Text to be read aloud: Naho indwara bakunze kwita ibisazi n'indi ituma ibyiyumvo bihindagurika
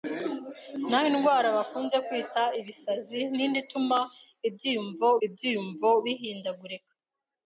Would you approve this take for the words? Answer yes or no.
no